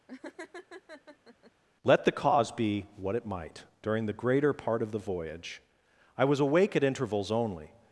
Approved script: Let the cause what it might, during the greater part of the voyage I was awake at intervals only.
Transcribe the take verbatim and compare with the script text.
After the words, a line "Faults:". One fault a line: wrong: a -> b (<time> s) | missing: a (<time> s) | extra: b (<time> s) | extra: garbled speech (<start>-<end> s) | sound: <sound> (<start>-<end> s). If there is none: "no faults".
Let the cause be what it might, during the greater part of the voyage I was awake at intervals only.
Faults:
sound: laugh (0.1-1.5 s)
extra: be (2.5 s)